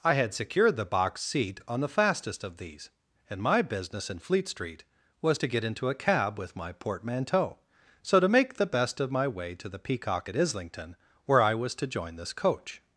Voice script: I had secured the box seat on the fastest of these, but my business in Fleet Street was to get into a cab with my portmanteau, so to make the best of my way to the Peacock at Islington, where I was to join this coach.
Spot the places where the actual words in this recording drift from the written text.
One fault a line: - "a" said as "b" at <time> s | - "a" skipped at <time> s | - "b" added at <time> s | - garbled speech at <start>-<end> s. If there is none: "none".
- "but" said as "and" at 3.3 s